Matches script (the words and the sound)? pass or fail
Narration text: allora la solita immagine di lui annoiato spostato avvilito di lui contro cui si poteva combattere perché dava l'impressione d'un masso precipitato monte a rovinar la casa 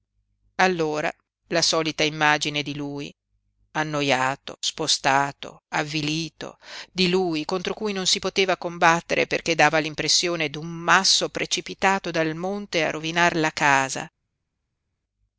fail